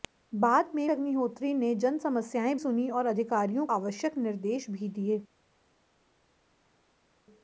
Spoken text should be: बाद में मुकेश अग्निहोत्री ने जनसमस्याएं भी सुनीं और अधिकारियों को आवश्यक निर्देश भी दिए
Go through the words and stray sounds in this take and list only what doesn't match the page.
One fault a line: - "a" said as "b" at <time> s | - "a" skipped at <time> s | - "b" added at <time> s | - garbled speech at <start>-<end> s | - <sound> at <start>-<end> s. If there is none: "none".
- "मुकेश" skipped at 0.9 s
- "भी" skipped at 2.6 s
- "को" skipped at 3.7 s